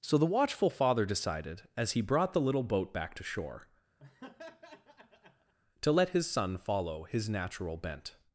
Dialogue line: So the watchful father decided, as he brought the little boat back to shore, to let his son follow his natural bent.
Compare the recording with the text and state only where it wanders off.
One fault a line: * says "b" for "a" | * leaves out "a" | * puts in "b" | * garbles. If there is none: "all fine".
all fine